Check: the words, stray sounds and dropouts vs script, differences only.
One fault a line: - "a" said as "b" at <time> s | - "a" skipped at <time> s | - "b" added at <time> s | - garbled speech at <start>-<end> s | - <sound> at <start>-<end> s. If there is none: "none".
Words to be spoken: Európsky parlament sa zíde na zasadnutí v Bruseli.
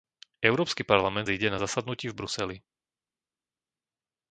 - "sa" skipped at 1.3 s